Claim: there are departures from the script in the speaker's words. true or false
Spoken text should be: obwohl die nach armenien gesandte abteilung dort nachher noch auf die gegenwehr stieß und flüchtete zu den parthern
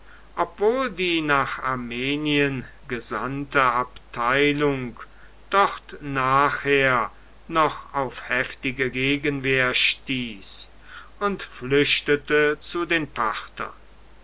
true